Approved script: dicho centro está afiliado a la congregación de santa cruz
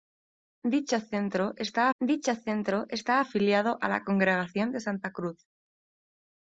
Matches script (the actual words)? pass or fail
fail